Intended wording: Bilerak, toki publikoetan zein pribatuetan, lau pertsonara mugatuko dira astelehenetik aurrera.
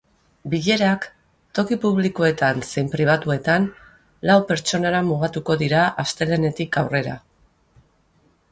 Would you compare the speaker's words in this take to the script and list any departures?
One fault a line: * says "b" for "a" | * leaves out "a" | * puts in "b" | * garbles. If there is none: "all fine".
all fine